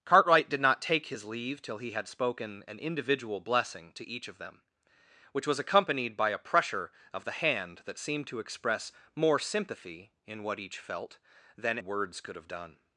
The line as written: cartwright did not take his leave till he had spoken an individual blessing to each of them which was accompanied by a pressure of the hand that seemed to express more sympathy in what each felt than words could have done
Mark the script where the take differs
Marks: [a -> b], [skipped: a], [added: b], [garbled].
cartwright did not take his leave till he had spoken an individual blessing to each of them which was accompanied by a pressure of the hand that seemed to express more sympathy in what each felt than words could have done